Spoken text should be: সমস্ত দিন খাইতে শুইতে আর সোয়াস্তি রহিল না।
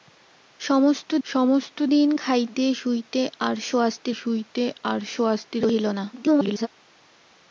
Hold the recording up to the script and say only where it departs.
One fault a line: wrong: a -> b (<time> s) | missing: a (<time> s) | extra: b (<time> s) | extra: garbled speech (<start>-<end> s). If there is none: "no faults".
extra: সমস্ত (1.2 s)
extra: শুইতে আর সোয়াস্তি (4.1 s)
extra: garbled speech (6.1-6.7 s)